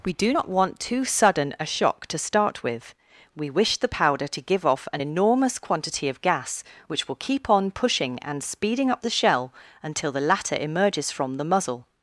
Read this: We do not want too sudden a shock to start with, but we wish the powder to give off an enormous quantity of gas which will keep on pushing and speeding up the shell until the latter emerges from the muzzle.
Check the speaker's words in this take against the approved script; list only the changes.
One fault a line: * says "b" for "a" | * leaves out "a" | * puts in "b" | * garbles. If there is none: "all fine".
* leaves out "but"